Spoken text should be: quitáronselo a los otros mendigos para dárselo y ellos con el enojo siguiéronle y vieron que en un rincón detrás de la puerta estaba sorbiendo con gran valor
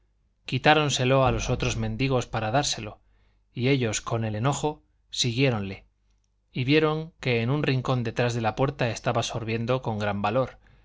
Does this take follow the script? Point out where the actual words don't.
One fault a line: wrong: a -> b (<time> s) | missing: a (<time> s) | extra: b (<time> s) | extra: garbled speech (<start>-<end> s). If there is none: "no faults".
no faults